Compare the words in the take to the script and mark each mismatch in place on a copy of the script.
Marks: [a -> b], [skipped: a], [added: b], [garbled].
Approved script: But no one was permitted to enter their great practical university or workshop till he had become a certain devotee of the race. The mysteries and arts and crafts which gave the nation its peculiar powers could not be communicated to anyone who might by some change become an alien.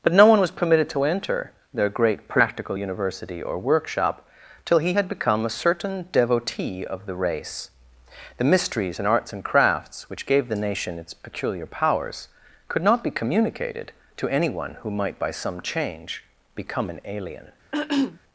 But no one was permitted to enter their great practical university or workshop till he had become a certain devotee of the race. The mysteries and arts and crafts which gave the nation its peculiar powers could not be communicated to anyone who might by some change become an alien.